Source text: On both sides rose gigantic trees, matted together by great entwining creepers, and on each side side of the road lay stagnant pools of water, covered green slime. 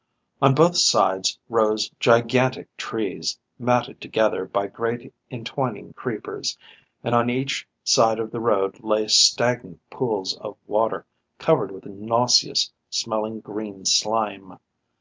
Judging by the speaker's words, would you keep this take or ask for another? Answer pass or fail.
fail